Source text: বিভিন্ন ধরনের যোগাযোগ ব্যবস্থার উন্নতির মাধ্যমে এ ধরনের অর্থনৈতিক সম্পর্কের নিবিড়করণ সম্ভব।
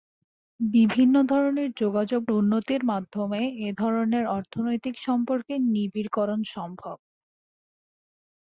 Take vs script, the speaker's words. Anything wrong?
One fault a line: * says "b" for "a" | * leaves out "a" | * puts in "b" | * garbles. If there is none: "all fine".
* leaves out "ব্যবস্থার"